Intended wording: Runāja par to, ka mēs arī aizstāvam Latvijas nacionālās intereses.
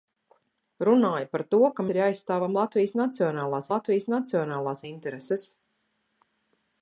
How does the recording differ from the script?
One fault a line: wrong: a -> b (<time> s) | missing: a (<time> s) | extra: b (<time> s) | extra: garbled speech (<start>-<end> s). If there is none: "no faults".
missing: mēs (1.9 s)
extra: Latvijas nacionālās (3.7 s)